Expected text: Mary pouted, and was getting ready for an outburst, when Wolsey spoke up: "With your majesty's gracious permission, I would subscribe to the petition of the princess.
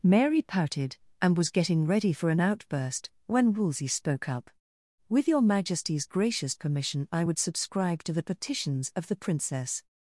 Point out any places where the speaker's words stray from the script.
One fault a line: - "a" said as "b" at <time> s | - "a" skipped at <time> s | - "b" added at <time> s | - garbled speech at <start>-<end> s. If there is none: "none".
- "petition" said as "petitions" at 8.2 s